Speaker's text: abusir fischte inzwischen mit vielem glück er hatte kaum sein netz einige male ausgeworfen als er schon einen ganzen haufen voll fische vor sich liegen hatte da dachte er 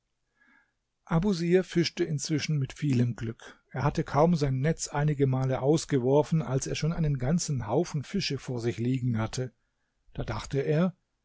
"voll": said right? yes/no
no